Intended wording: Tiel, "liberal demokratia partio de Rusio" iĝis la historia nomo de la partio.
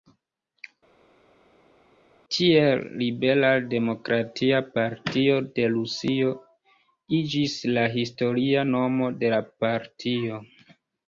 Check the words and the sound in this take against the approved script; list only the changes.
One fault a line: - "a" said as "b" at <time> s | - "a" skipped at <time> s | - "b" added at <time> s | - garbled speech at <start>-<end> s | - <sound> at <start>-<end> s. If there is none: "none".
none